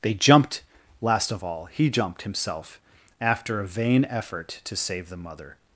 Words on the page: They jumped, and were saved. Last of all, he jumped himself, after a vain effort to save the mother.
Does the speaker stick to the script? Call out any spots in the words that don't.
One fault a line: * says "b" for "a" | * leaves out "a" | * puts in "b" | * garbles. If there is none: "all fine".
* leaves out "and were saved"